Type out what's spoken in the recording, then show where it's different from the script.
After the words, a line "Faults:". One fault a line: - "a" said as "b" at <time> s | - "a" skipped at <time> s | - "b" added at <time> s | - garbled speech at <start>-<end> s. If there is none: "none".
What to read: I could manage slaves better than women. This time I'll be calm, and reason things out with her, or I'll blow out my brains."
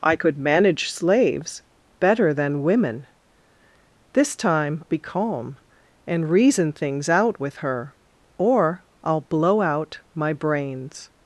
I could manage slaves better than women. This time Be calm, and reason things out with her, or I'll blow out my brains."
Faults:
- "I'll" skipped at 4.8 s